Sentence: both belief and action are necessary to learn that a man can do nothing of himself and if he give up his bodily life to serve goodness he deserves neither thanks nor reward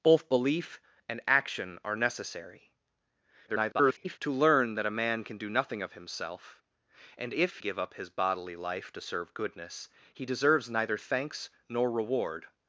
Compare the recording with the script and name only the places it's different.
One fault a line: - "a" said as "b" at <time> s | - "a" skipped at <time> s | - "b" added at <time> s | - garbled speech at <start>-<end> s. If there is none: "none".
- garbled speech at 3.5-4.2 s
- "he" skipped at 7.6 s